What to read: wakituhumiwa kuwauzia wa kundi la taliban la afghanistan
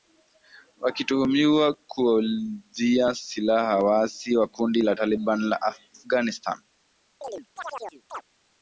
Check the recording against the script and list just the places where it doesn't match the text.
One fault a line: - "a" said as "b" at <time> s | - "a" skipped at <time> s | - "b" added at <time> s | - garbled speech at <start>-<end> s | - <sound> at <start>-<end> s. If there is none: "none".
- "silaha waasi" added at 3.1 s
- chirp at 7.2-8.2 s